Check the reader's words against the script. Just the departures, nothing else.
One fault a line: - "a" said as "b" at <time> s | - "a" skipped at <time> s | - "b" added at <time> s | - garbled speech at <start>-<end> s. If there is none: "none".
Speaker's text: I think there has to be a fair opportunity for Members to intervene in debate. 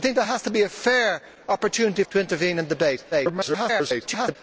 - "for Members" skipped at 2.0 s
- garbled speech at 3.1-4.4 s